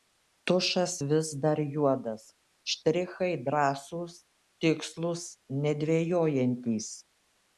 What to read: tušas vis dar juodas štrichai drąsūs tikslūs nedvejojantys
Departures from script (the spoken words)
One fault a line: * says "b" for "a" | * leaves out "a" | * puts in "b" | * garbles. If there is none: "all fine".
all fine